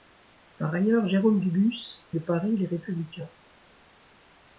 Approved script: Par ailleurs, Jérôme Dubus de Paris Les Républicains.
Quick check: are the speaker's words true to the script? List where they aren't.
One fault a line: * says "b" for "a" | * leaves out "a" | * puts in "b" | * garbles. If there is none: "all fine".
all fine